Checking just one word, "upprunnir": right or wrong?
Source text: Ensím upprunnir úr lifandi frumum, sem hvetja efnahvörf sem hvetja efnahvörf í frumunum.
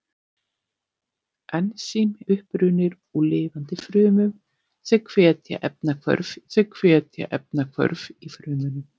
right